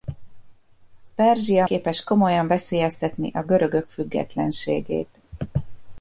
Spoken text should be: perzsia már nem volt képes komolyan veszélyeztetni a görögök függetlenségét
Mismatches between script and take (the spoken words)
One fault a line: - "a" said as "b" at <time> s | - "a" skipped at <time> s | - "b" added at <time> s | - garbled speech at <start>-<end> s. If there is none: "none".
- "már nem volt" skipped at 1.7 s